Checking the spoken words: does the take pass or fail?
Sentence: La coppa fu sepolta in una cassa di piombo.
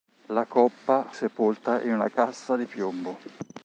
fail